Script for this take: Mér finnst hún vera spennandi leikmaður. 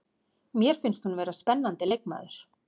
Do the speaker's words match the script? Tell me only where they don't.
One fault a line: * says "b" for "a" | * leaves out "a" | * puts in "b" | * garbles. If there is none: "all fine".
all fine